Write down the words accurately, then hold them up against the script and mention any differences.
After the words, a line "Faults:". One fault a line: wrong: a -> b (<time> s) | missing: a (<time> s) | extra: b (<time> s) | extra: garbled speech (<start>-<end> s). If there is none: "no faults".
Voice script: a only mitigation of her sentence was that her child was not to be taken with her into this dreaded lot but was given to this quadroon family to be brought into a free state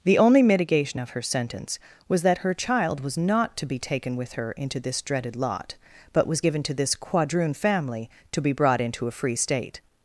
the only mitigation of her sentence was that her child was not to be taken with her into this dreaded lot but was given to this quadroon family to be brought into a free state
Faults:
wrong: a -> the (0.0 s)